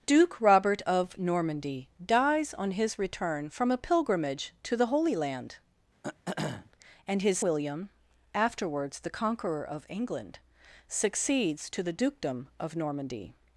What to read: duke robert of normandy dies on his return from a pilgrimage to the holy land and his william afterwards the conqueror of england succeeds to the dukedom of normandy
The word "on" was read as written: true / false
true